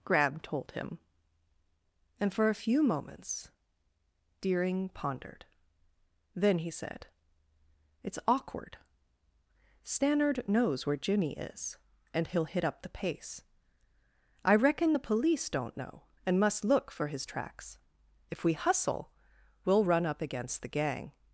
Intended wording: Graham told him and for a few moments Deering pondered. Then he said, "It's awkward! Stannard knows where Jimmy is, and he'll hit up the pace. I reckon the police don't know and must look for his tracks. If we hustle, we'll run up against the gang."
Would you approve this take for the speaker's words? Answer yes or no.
no